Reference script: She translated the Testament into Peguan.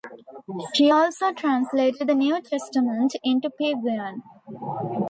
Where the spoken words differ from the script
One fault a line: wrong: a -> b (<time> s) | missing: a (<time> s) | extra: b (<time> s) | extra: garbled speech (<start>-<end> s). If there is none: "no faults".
extra: also (0.9 s)
extra: New (2.1 s)